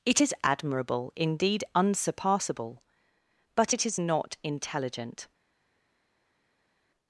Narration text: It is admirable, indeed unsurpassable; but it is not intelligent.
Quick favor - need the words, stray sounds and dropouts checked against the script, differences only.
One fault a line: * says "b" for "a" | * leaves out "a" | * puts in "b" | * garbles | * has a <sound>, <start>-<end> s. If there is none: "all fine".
all fine